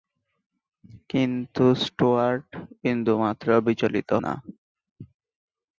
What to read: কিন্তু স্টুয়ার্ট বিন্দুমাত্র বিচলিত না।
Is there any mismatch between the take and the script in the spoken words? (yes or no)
no